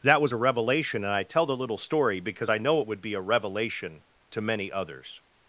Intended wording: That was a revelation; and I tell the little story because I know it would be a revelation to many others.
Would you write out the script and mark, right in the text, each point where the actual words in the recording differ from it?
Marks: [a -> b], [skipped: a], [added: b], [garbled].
That was a revelation; and I tell the little story because I know it would be a revelation to many others.